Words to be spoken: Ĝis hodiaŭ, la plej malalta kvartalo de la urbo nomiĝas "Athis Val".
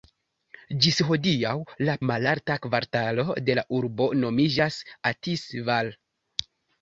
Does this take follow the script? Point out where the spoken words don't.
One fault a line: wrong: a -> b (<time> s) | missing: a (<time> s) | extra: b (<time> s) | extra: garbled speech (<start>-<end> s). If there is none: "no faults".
missing: plej (1.9 s)